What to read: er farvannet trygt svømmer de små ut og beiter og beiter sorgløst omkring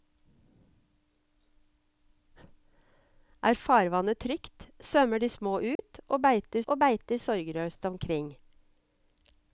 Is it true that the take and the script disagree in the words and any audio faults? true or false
true